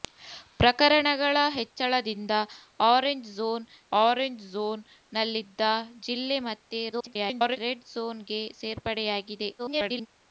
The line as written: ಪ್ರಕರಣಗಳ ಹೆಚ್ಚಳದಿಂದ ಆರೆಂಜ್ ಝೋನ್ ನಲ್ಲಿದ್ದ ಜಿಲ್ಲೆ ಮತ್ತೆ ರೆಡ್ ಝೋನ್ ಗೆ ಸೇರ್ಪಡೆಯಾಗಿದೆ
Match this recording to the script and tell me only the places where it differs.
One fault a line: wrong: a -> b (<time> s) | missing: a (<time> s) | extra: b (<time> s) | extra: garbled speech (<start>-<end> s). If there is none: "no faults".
extra: ಆರೆಂಜ್ ಝೋನ್ (4.0 s)
extra: garbled speech (6.9-7.6 s)
extra: garbled speech (9.6-10.1 s)